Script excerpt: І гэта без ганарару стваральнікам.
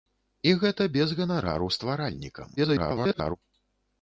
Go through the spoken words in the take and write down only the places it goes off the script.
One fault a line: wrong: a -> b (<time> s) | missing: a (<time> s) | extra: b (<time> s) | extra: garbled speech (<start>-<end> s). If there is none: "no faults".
extra: garbled speech (2.6-3.4 s)